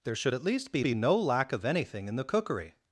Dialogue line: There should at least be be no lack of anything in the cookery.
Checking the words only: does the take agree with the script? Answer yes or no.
yes